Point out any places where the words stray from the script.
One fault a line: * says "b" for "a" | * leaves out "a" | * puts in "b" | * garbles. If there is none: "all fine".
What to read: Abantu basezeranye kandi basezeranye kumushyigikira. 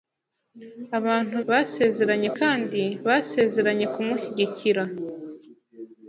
all fine